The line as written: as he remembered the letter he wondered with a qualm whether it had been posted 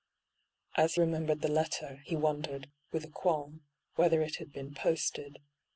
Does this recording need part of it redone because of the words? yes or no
yes